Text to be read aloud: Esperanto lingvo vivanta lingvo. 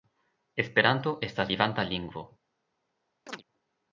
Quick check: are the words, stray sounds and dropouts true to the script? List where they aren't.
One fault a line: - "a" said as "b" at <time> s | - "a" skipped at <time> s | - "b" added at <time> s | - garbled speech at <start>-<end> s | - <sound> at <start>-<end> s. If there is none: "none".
- "lingvo" said as "estas" at 1.2 s
- chirp at 3.3-3.4 s